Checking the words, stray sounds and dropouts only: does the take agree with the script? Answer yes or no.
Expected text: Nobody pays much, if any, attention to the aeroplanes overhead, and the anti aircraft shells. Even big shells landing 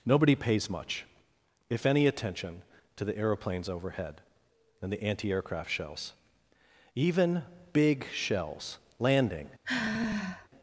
no